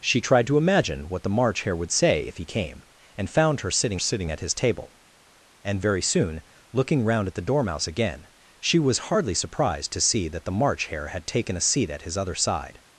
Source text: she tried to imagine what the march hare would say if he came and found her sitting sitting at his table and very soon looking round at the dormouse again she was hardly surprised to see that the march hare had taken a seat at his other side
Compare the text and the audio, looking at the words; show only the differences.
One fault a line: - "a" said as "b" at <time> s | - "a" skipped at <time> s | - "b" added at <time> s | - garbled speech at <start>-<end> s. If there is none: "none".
none